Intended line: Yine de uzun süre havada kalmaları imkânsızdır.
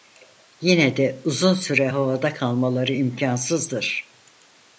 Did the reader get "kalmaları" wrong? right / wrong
right